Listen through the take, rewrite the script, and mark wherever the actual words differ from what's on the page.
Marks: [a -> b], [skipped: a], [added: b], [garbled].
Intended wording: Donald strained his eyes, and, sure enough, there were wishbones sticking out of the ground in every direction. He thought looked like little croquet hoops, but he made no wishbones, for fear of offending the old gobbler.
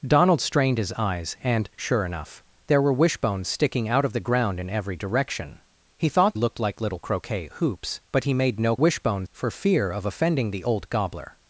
Donald strained his eyes, and, sure enough, there were wishbones sticking out of the ground in every direction. He thought looked like little croquet hoops, but he made no wishbones, for fear of offending the old gobbler.